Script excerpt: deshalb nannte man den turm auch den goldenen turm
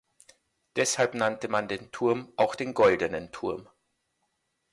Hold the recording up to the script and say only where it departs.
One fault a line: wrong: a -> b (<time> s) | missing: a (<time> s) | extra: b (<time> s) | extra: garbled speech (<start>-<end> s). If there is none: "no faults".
no faults